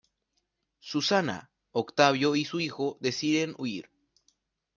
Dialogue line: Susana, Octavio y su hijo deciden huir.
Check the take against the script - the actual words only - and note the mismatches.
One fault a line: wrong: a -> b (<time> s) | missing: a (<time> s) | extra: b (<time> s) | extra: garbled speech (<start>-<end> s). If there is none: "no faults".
no faults